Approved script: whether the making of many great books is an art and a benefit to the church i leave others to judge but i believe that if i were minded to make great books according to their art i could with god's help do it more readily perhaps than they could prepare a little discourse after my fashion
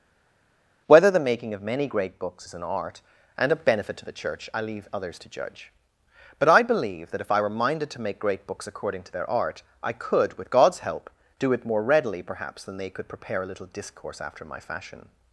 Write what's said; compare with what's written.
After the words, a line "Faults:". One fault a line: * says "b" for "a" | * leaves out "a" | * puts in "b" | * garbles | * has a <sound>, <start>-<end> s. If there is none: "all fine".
whether the making of many great books is an art and a benefit to the church i leave others to judge but i believe that if i were minded to make great books according to their art i could with god's help do it more readily perhaps than they could prepare a little discourse after my fashion
Faults:
all fine